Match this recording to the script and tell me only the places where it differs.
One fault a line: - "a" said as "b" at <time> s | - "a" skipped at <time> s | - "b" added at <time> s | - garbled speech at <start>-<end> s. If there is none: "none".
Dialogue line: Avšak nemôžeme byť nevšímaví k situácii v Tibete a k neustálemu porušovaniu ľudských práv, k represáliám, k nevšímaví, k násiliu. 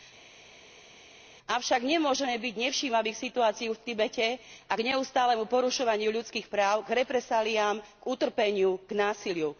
- "nevšímaví" said as "utrpeniu" at 8.1 s